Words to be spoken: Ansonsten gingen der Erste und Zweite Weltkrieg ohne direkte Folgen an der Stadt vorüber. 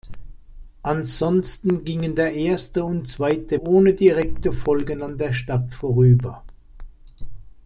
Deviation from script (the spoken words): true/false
true